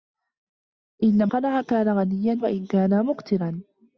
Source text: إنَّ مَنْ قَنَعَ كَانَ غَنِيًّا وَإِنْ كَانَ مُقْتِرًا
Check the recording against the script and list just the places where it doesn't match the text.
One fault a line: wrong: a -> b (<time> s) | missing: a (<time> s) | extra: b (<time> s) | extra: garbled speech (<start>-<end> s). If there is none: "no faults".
missing: مَنْ (1.3 s)